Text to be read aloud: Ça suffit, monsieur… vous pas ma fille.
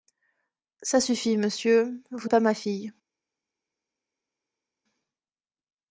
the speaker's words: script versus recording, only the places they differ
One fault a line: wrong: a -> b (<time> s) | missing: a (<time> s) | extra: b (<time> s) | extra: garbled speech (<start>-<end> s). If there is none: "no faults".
no faults